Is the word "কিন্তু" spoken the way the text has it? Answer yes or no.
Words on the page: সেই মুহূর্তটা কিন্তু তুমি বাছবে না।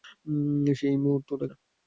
no